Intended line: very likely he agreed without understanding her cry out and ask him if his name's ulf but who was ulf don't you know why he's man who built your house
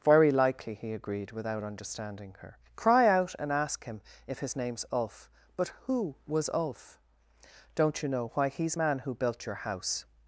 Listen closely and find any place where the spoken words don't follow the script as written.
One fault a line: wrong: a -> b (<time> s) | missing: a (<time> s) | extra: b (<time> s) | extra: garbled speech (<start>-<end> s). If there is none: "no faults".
no faults